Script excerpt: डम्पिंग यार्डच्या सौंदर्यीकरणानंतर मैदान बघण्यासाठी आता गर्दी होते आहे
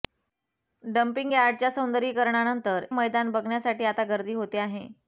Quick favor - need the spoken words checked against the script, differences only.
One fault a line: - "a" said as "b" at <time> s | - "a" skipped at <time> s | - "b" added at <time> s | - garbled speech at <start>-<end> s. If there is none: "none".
none